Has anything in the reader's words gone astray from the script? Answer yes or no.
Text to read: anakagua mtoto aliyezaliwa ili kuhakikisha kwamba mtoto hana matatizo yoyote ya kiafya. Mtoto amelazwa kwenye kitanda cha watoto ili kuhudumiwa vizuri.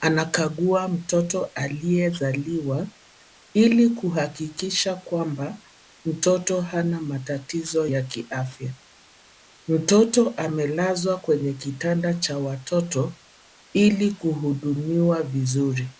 yes